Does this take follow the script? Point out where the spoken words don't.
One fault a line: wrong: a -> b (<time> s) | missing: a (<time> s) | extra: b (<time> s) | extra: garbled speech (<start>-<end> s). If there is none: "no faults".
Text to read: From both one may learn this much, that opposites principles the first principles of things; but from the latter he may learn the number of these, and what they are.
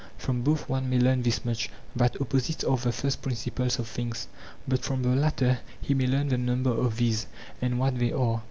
wrong: principles -> are (2.6 s)